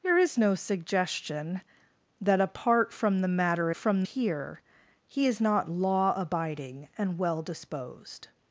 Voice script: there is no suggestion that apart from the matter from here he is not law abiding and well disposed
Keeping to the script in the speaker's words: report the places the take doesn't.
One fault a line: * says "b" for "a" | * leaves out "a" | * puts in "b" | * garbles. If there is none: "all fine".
all fine